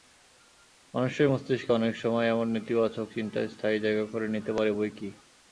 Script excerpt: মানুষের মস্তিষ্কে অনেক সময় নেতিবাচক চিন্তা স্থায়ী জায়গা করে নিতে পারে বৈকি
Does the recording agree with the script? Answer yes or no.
no